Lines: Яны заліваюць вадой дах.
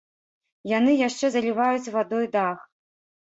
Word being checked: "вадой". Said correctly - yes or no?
yes